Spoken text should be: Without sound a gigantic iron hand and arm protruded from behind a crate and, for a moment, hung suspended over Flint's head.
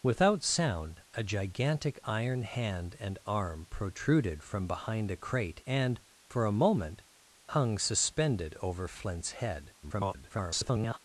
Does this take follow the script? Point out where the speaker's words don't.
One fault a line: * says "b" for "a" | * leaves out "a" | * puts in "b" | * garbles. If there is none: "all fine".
* garbles